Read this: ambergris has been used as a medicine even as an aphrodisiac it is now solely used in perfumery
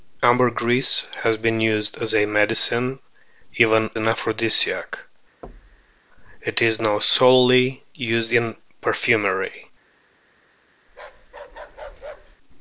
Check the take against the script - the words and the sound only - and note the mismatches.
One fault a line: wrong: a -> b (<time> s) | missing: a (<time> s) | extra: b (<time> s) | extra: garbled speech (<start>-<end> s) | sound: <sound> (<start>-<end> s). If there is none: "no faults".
missing: as (3.9 s)
sound: thud (5.4-6.0 s)
sound: bark (10.9-12.4 s)